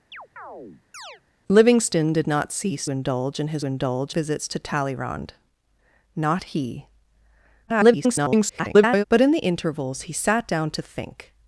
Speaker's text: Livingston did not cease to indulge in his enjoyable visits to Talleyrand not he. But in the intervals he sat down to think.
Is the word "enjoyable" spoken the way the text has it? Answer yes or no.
no